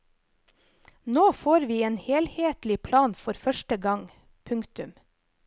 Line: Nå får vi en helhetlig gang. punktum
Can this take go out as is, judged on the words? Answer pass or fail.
fail